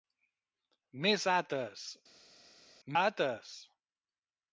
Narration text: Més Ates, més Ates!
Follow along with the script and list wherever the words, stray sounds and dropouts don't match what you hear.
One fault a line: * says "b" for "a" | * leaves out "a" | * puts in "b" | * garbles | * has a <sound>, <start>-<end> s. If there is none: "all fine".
* leaves out "més"